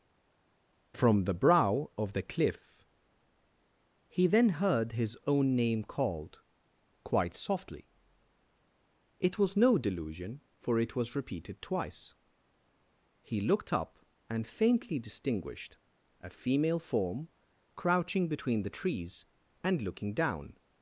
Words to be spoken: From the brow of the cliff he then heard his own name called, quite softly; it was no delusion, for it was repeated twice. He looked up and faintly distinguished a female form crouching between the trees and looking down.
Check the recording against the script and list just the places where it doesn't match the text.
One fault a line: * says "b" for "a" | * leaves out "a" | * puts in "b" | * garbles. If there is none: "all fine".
all fine